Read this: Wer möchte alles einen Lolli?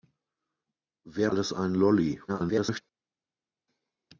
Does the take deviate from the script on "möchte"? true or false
true